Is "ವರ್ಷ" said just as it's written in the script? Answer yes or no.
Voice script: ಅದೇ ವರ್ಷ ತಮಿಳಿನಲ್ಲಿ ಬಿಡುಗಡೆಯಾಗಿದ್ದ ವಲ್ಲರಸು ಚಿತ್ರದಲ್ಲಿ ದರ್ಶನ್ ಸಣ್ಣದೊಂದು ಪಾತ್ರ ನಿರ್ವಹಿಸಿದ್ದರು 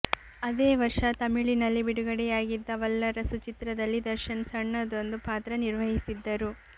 yes